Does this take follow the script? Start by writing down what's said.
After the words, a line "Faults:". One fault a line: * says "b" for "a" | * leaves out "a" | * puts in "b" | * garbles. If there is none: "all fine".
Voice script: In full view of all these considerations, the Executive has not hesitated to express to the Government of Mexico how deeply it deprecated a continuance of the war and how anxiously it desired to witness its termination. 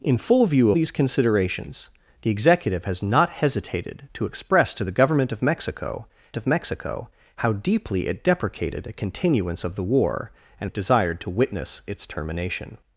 In full view these considerations, the Executive has not hesitated to express to the Government of Mexico of Mexico how deeply it deprecated a continuance of the war and it desired to witness its termination.
Faults:
* leaves out "of all"
* puts in "of Mexico"
* leaves out "how anxiously"